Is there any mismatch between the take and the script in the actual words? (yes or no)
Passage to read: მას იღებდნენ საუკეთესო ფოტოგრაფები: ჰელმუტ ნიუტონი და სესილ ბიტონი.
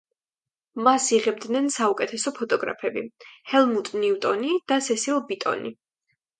no